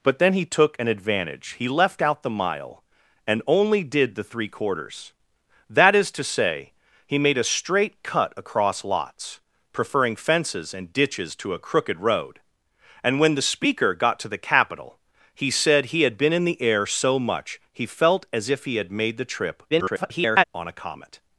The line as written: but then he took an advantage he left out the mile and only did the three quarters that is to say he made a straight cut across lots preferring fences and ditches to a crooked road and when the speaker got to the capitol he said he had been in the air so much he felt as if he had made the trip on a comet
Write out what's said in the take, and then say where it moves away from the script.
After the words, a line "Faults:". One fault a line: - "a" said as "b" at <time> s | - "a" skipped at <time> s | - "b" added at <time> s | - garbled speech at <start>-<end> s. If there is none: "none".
but then he took an advantage he left out the mile and only did the three quarters that is to say he made a straight cut across lots preferring fences and ditches to a crooked road and when the speaker got to the capitol he said he had been in the air so much he felt as if he had made the trip [garbled] on a comet
Faults:
- garbled speech at 19.7-20.4 s